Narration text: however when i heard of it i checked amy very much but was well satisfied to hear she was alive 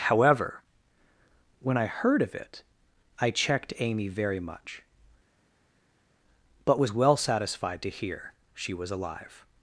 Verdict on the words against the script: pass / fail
pass